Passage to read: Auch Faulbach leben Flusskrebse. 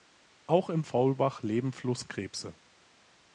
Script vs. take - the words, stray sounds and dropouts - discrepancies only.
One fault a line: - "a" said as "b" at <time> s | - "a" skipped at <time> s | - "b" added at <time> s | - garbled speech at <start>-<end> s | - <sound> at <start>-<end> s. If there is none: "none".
- "im" added at 0.7 s